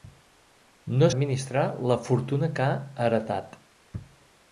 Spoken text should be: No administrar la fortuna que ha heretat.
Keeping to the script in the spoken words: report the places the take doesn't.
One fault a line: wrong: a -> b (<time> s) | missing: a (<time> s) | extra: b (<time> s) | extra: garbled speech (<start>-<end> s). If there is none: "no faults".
no faults